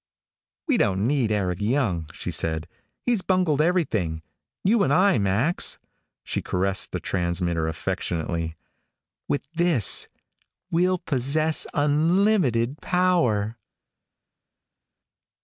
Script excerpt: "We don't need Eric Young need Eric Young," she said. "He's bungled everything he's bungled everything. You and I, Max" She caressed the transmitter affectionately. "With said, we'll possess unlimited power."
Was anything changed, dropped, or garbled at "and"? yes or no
no